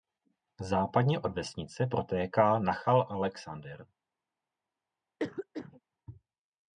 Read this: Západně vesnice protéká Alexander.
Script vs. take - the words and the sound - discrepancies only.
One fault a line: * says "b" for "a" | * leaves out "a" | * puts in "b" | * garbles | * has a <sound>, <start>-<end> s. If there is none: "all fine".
* puts in "od"
* puts in "Nachal"
* has a cough, 5.2-5.8 s